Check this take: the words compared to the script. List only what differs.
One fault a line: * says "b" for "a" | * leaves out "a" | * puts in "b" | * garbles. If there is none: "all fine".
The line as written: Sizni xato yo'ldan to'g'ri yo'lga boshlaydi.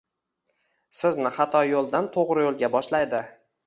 all fine